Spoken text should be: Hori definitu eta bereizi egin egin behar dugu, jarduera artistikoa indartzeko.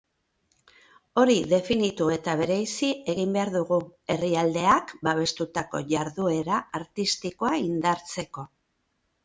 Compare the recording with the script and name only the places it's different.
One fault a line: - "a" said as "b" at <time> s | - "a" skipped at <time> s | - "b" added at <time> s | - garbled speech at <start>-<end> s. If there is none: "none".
- "egin" skipped at 3.3 s
- "herrialdeak babestutako" added at 4.2 s